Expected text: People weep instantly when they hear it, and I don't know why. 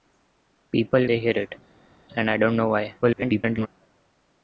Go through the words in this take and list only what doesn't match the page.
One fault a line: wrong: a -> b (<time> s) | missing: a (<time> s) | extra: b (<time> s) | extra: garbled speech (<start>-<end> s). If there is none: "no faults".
missing: weep instantly when (1.1 s)
extra: garbled speech (3.0-3.7 s)